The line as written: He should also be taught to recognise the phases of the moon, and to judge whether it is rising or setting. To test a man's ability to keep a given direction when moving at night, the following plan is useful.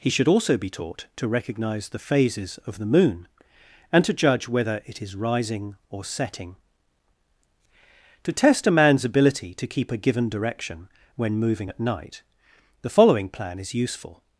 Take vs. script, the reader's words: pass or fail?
pass